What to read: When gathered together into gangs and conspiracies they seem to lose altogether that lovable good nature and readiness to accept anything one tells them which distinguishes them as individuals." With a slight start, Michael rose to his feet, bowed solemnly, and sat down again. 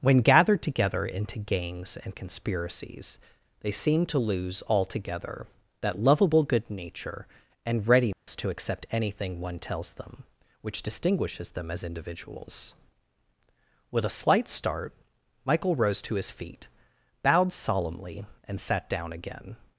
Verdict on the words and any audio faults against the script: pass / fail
fail